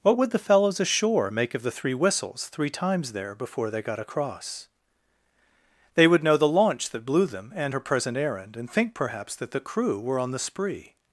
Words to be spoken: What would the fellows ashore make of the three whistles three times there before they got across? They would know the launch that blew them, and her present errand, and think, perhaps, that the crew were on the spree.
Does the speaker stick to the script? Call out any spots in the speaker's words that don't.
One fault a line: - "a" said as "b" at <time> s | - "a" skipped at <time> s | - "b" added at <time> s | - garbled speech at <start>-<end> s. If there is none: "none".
none